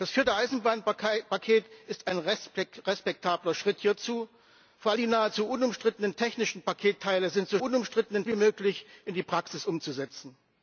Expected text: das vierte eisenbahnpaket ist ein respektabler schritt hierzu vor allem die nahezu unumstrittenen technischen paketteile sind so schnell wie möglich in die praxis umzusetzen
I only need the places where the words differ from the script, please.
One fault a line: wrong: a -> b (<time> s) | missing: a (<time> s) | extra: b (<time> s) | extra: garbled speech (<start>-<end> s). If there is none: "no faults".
missing: allem (4.9 s)
wrong: schnell -> unumstrittenen (7.6 s)